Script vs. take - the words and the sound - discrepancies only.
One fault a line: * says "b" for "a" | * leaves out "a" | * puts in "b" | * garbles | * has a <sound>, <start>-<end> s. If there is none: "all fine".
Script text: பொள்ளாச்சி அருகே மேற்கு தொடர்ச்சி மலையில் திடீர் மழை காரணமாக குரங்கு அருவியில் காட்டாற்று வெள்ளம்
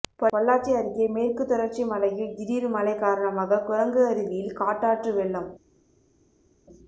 all fine